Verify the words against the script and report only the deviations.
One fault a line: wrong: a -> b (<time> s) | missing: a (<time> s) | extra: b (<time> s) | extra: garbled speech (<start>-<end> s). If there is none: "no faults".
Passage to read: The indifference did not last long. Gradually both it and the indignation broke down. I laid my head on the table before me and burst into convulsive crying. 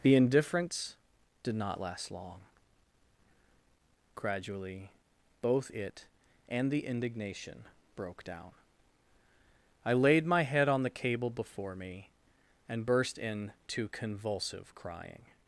wrong: table -> cable (10.9 s)